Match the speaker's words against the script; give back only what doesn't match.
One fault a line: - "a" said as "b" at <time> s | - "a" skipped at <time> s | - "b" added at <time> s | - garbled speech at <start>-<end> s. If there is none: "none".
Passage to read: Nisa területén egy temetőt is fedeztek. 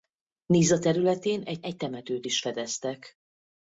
- "egy" added at 1.6 s